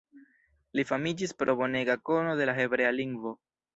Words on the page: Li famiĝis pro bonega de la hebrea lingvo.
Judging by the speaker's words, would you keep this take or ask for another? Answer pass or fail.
fail